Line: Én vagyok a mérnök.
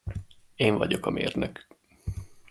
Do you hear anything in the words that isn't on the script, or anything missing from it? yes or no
no